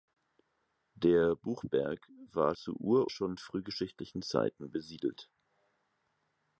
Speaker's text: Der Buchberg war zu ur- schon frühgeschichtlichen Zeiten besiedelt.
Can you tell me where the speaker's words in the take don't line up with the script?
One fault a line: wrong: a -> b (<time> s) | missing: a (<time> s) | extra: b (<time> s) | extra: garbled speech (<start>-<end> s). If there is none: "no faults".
no faults